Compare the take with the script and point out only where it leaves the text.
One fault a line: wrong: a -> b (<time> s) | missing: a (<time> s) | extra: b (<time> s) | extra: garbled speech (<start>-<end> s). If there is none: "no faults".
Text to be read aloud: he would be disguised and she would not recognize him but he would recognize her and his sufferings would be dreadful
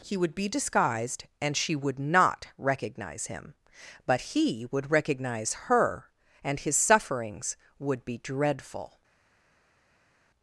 no faults